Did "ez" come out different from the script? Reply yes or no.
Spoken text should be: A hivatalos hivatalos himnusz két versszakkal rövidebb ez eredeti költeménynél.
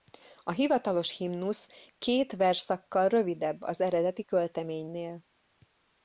yes